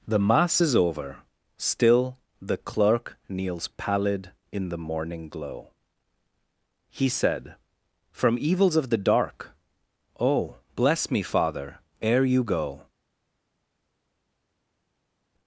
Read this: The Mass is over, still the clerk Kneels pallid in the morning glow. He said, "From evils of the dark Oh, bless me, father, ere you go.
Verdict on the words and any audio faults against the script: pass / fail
pass